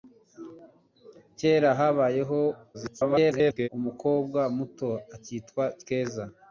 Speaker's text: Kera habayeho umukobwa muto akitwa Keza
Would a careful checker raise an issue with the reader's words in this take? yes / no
yes